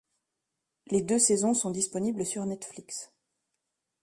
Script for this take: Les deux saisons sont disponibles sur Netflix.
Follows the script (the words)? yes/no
yes